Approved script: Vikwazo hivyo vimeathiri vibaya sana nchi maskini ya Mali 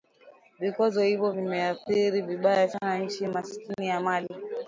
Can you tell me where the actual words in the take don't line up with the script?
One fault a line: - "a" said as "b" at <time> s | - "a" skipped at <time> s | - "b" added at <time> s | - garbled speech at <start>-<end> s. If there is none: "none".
none